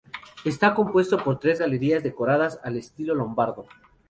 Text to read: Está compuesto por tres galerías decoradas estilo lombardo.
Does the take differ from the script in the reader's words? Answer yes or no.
yes